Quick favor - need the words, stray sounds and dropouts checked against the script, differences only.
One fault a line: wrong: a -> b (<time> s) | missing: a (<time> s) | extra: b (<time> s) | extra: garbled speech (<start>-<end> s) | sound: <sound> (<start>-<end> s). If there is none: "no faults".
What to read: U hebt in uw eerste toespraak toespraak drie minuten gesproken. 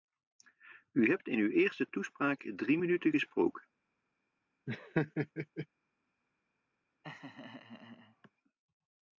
missing: toespraak (2.5 s)
sound: laugh (4.7-5.7 s)
sound: laugh (7.0-8.3 s)